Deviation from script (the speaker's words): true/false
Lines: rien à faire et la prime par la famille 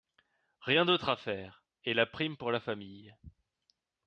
true